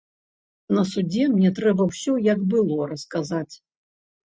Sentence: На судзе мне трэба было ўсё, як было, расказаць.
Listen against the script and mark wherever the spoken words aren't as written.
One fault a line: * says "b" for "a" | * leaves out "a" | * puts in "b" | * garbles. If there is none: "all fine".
* leaves out "было"